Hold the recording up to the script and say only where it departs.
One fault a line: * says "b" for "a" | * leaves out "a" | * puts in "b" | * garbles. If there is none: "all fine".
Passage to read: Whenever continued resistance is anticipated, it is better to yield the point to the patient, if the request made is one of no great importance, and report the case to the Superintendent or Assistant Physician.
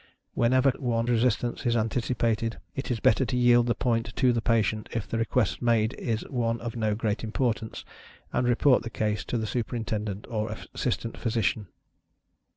* says "one" for "continued"